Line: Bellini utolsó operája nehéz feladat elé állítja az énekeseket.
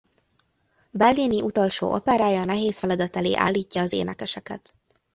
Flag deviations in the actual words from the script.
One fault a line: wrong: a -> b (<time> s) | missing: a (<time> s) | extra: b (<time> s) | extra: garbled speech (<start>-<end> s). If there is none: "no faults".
no faults